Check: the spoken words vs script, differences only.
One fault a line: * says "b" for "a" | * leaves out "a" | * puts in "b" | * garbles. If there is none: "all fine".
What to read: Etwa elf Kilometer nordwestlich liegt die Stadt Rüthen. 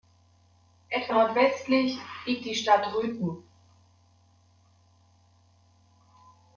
* leaves out "elf Kilometer"